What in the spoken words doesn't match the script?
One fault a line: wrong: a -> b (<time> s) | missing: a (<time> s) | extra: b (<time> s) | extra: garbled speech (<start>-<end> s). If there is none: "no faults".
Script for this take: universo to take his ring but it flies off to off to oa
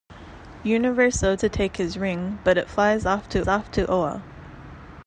no faults